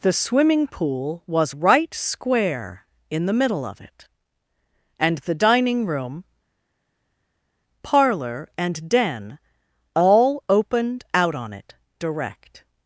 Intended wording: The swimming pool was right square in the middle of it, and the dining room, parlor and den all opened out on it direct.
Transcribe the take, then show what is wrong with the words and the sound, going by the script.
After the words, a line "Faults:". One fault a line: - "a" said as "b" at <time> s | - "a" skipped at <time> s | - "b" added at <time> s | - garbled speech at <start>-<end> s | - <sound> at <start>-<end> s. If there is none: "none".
The swimming pool was right square in the middle of it, and the dining room, parlor and den all opened out on it direct.
Faults:
none